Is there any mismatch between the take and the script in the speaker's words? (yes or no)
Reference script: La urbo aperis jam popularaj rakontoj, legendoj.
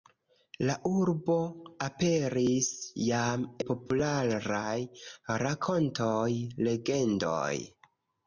no